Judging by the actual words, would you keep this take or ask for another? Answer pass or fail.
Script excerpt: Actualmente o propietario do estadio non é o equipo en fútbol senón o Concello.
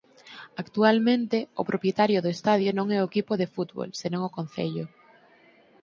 fail